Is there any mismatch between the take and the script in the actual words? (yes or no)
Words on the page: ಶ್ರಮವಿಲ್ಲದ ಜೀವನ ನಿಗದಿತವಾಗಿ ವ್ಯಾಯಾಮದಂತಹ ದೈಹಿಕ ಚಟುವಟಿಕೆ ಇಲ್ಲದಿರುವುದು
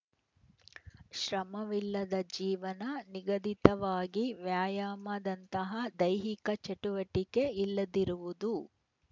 no